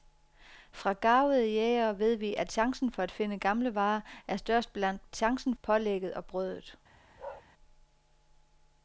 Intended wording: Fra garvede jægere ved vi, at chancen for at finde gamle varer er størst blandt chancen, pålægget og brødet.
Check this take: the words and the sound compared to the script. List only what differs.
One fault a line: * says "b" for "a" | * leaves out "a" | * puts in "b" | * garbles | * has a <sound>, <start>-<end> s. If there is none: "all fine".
* has a bark, 7.2-7.4 s